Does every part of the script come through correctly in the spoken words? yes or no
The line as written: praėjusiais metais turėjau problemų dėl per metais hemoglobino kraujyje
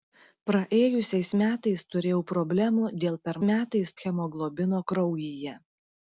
yes